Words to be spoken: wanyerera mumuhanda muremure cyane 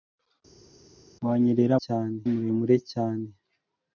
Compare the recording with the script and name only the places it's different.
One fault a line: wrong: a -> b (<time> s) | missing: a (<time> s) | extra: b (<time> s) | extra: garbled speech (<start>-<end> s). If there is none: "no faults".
wrong: mumuhanda -> cyane (1.8 s)